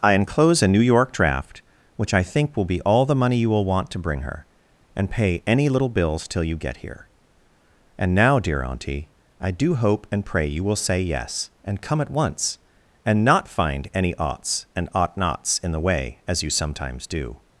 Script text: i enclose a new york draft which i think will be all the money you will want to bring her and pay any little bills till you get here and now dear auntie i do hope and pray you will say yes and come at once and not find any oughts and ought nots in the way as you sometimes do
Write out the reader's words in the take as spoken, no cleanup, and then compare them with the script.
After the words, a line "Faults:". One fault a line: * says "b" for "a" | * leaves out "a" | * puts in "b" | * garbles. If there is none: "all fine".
i enclose a new york draft which i think will be all the money you will want to bring her and pay any little bills till you get here and now dear auntie i do hope and pray you will say yes and come at once and not find any oughts and ought nots in the way as you sometimes do
Faults:
all fine